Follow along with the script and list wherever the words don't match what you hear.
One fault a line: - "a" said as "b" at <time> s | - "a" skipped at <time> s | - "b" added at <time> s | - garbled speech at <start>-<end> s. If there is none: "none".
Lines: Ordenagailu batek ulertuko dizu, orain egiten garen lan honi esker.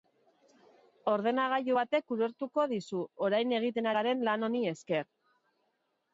none